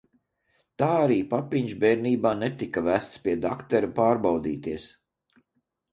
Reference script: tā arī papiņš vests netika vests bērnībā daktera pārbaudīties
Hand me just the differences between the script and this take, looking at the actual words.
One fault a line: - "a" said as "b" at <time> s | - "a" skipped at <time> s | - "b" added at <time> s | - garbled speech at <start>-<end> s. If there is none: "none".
- "vests" said as "bērnībā" at 1.8 s
- "bērnībā" said as "pie" at 3.3 s